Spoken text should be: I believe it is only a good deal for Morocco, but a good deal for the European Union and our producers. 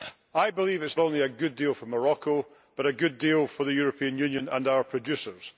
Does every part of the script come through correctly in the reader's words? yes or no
yes